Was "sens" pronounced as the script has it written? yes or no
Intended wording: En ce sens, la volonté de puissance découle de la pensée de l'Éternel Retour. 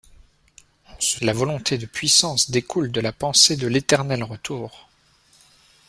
no